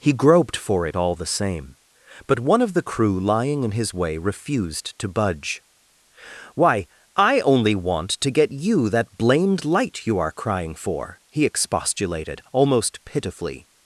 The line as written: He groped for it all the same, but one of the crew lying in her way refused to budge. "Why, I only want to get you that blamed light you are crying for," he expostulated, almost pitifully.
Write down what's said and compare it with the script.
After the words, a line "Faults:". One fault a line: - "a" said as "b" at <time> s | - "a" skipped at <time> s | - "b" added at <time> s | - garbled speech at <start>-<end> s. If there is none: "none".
He groped for it all the same, but one of the crew lying in his way refused to budge. "Why, I only want to get you that blamed light you are crying for," he expostulated, almost pitifully.
Faults:
- "her" said as "his" at 3.7 s